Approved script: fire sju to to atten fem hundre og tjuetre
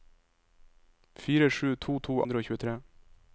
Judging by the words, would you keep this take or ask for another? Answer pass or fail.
fail